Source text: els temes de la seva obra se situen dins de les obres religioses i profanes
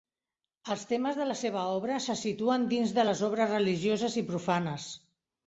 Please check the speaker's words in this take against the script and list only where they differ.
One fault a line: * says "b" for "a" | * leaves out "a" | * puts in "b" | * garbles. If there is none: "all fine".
all fine